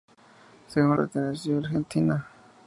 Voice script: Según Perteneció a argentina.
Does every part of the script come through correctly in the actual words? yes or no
yes